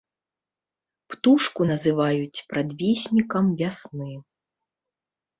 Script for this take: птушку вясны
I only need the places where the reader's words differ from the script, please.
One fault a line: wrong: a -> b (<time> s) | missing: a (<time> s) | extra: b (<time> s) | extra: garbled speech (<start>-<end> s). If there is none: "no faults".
extra: называюць прадвеснікам (1.7 s)